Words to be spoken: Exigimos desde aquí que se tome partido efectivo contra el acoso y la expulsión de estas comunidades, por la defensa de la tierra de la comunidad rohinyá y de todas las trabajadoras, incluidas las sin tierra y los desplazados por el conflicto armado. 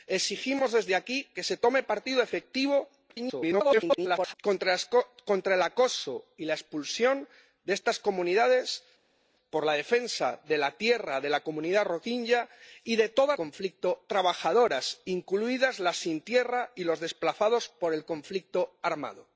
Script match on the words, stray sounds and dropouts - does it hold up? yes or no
no